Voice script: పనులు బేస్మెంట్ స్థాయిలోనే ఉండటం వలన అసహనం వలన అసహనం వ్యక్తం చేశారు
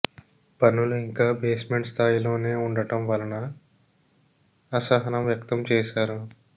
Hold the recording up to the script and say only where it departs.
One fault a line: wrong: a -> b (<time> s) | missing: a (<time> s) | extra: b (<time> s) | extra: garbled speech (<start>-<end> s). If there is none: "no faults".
extra: ఇంకా (1.0 s)
missing: వలన అసహనం (5.2 s)